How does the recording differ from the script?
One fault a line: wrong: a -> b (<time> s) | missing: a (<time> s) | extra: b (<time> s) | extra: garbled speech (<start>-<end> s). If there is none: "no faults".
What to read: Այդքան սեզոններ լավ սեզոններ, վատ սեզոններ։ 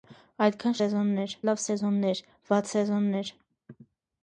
no faults